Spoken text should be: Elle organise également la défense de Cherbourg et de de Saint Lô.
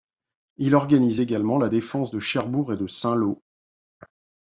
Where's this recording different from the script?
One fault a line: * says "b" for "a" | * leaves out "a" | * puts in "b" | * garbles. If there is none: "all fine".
* says "Il" for "Elle"
* leaves out "de"